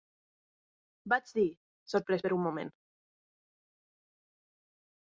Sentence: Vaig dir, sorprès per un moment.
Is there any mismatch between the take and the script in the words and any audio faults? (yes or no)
no